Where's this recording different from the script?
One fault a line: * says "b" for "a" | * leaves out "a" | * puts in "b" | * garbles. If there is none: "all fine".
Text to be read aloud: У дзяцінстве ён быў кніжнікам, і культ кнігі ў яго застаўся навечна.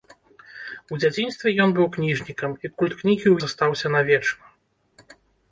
* leaves out "яго"